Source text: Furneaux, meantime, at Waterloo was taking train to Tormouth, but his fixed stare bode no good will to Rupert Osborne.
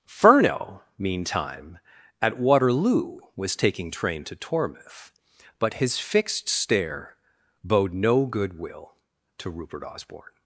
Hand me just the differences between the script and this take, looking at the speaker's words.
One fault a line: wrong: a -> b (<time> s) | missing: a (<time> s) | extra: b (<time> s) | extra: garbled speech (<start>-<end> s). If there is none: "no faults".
no faults